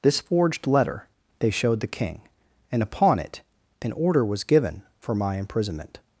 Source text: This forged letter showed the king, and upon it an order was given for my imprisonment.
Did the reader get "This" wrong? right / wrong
right